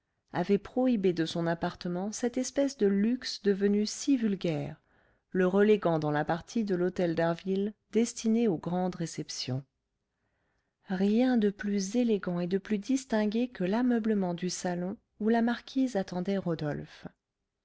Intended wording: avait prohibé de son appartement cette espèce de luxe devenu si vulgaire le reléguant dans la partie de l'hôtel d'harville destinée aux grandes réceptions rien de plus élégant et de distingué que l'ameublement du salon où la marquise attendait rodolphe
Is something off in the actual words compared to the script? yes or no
yes